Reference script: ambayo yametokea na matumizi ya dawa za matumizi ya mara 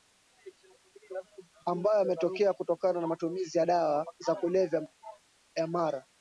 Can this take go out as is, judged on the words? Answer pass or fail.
fail